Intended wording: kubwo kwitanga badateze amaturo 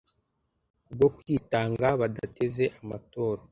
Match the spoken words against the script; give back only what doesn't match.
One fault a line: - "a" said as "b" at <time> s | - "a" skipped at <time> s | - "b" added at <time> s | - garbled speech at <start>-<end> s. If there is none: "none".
none